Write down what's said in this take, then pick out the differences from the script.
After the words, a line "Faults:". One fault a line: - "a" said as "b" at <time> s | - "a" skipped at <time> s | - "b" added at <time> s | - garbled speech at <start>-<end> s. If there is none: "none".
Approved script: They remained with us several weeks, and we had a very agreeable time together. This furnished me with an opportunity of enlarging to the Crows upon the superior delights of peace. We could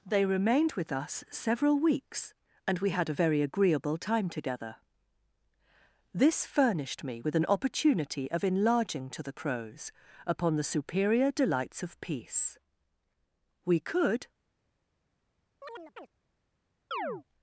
They remained with us several weeks, and we had a very agreeable time together. This furnished me with an opportunity of enlarging to the Crows upon the superior delights of peace. We could
Faults:
none